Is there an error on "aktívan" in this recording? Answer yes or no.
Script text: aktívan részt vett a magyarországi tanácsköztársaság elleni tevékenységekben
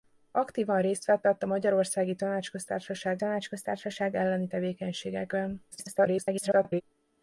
no